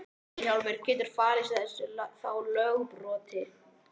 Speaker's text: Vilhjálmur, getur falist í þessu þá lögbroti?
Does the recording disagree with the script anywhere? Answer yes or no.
no